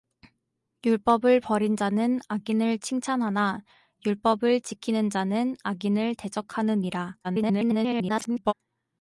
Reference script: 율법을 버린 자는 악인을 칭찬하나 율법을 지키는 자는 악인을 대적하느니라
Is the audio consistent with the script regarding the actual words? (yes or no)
no